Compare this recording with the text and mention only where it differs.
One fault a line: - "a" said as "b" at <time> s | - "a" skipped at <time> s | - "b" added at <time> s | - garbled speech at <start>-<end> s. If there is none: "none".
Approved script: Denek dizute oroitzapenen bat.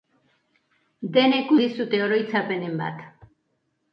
none